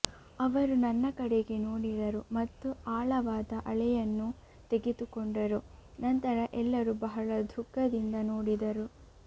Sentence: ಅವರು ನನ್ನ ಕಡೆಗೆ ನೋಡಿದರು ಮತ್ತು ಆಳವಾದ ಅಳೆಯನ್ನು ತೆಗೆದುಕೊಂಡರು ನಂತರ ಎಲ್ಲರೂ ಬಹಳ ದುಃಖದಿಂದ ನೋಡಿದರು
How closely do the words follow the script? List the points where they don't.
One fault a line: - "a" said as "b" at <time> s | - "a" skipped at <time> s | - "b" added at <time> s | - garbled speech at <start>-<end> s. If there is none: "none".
none